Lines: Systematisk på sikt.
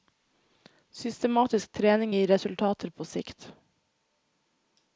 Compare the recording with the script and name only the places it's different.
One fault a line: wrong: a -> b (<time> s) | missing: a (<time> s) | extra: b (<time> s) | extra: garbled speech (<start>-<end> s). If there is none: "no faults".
extra: trening gir resultater (1.7 s)